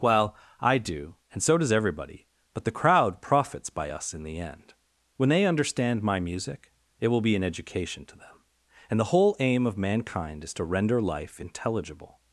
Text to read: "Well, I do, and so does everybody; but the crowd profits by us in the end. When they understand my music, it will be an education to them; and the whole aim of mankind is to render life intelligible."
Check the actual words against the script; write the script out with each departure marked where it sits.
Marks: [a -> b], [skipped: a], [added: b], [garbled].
"Well, I do, and so does everybody; but the crowd profits by us in the end. When they understand my music, it will be an education to them; and the whole aim of mankind is to render life intelligible."